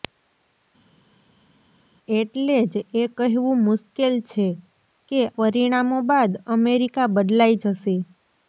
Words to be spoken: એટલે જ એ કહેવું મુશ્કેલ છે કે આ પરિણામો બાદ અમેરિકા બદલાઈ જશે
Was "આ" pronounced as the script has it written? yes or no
no